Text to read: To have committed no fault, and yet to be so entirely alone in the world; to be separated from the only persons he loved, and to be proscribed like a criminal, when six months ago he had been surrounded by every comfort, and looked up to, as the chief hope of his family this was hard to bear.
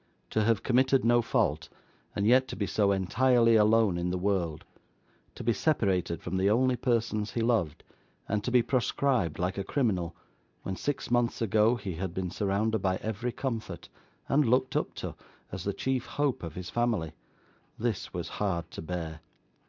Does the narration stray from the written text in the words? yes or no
no